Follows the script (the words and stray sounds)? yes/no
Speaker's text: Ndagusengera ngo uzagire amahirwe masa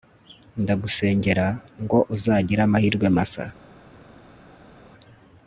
yes